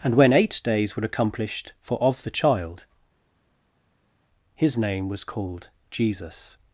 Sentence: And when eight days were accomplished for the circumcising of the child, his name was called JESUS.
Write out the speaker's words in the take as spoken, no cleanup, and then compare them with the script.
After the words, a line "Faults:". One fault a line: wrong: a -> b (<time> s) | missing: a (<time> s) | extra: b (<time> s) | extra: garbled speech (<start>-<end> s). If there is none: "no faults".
And when eight days were accomplished for of the child, his name was called JESUS.
Faults:
missing: the circumcising (2.0 s)